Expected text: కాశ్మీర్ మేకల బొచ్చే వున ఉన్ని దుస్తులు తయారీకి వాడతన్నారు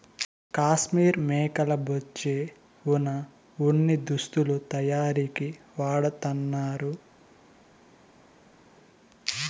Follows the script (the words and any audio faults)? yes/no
yes